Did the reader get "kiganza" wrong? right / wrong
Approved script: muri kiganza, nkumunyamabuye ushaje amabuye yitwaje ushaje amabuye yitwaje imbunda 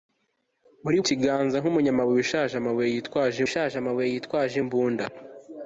right